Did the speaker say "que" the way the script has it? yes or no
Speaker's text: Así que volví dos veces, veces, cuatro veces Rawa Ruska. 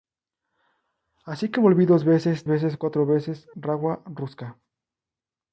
yes